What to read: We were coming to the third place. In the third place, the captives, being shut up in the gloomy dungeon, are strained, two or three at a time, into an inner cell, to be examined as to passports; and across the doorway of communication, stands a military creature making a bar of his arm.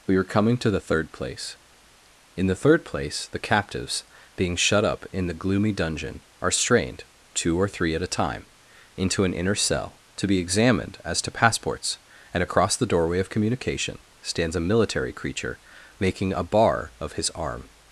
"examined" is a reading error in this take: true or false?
false